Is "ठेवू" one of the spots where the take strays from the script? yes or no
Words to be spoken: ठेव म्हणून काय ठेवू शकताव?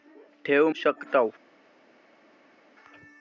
yes